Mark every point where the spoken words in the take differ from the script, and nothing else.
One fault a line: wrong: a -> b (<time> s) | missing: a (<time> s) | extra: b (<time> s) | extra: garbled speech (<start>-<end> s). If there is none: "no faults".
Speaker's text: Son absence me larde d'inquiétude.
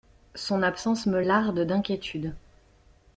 no faults